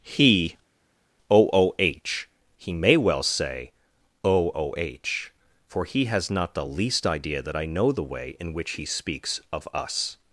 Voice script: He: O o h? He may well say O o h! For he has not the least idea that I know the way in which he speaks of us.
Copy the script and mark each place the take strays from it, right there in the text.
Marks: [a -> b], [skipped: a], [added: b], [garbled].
He: O o h? He may well say O o h! For he has not the least idea that I know the way in which he speaks of us.